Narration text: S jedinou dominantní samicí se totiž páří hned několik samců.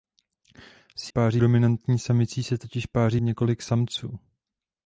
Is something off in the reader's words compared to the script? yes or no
yes